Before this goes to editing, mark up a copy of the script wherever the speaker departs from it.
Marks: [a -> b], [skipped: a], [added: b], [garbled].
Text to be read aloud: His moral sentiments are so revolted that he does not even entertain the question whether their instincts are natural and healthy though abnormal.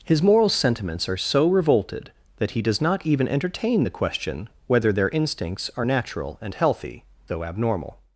His moral sentiments are so revolted that he does not even entertain the question whether their instincts are natural and healthy though abnormal.